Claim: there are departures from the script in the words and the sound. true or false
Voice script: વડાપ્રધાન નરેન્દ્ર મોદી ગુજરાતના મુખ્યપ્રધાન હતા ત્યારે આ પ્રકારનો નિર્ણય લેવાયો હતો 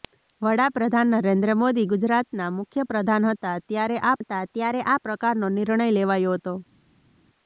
true